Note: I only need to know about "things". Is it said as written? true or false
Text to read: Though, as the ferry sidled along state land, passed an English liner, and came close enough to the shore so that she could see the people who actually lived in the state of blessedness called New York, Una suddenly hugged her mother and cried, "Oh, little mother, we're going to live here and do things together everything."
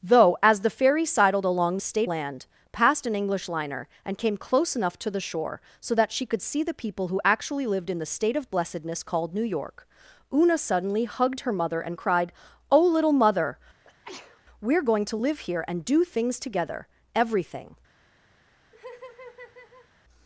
true